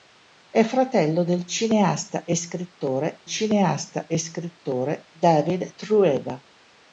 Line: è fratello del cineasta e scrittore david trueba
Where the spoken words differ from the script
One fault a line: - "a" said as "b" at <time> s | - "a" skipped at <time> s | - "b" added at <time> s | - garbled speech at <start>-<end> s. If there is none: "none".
- "cineasta e scrittore" added at 3.2 s